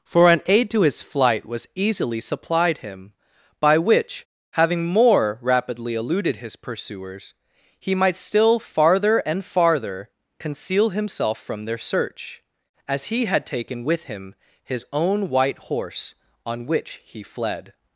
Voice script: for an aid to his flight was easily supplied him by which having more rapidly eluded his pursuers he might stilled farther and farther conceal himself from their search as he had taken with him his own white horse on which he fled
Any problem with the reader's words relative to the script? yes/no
yes